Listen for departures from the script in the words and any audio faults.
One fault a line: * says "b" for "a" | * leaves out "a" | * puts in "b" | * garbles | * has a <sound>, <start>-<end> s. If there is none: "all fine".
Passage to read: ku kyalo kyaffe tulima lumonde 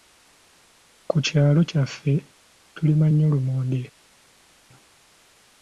* puts in "nnyo"